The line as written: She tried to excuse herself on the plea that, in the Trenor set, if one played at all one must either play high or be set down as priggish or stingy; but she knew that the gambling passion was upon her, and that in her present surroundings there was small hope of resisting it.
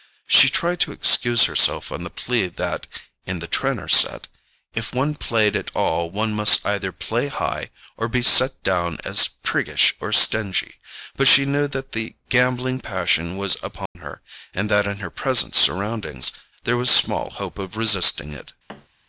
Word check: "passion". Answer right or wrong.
right